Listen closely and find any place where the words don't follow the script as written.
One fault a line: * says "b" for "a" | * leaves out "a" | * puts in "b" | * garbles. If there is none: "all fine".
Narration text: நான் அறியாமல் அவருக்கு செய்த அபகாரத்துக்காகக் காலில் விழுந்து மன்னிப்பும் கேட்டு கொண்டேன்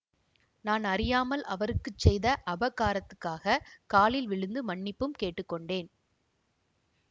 all fine